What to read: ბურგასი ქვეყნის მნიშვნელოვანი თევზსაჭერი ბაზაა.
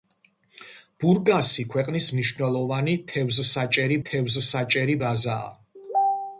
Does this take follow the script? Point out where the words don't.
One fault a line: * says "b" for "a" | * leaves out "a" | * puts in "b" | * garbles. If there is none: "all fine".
* puts in "თევზსაჭერი"